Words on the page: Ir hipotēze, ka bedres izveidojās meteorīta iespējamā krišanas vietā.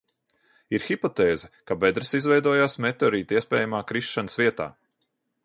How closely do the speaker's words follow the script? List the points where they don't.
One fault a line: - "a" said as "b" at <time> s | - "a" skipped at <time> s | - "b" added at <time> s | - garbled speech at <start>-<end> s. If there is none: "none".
none